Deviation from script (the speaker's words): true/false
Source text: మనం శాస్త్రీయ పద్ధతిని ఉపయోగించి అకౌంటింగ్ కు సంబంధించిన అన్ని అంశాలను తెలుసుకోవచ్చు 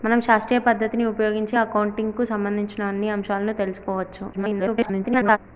true